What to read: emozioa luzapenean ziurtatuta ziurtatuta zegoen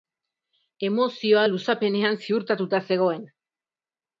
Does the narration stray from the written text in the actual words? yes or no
yes